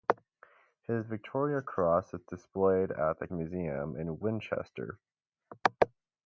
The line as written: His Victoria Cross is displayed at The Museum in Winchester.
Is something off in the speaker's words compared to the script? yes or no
no